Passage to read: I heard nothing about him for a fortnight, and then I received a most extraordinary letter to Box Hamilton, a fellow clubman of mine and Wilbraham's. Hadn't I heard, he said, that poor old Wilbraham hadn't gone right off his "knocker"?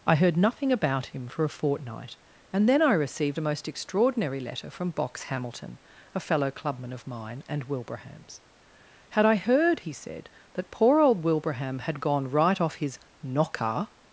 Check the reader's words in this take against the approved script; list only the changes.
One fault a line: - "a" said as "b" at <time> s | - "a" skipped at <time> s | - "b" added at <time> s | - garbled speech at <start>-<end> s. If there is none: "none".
- "to" said as "from" at 4.7 s
- "Hadn't" said as "Had" at 9.1 s
- "hadn't" said as "had" at 11.8 s